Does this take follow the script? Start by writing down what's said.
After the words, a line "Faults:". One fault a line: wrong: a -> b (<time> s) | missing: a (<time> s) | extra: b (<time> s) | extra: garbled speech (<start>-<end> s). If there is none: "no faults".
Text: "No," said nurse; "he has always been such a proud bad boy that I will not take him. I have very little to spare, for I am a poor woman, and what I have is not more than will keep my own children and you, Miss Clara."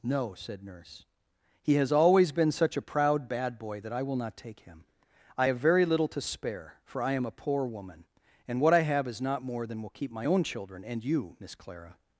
"No," said nurse; "he has always been such a proud bad boy that I will not take him. I have very little to spare, for I am a poor woman, and what I have is not more than will keep my own children and you, Miss Clara."
Faults:
no faults